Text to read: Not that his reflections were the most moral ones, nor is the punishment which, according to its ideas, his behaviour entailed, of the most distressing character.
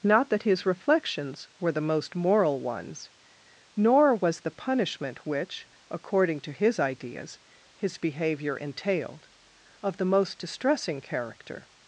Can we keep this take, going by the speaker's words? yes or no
no